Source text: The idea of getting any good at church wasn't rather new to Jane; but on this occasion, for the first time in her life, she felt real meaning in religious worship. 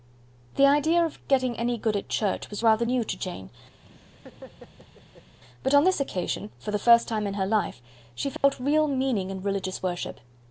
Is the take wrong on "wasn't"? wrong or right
wrong